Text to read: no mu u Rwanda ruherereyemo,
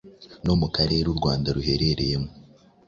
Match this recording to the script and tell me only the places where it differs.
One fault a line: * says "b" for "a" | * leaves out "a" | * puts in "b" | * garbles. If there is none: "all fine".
* puts in "karere"